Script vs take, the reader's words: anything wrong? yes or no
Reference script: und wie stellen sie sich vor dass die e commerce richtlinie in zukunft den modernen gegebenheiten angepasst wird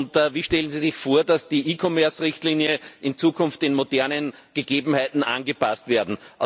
no